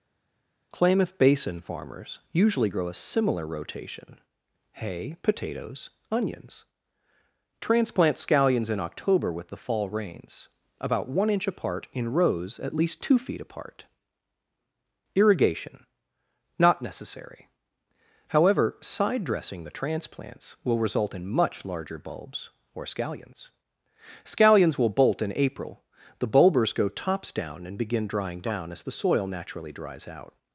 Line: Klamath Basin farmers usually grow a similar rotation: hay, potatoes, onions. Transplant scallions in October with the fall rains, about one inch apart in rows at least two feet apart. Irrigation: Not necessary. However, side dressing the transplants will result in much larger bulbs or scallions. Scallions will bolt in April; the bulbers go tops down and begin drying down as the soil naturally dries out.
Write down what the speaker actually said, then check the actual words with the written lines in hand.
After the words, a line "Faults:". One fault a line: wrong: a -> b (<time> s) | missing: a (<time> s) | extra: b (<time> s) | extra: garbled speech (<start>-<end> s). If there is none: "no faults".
Klamath Basin farmers usually grow a similar rotation: hay, potatoes, onions. Transplant scallions in October with the fall rains, about one inch apart in rows at least two feet apart. Irrigation: Not necessary. However, side dressing the transplants will result in much larger bulbs or scallions. Scallions will bolt in April; the bulbers go tops down and begin drying down as the soil naturally dries out.
Faults:
no faults